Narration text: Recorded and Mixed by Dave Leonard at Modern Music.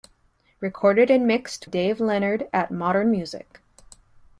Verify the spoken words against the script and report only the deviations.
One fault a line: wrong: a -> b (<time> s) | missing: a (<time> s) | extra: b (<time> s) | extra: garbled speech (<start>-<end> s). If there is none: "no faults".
missing: by (1.7 s)